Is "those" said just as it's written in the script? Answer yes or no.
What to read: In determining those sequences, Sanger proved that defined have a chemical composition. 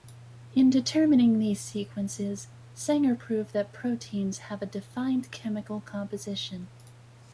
no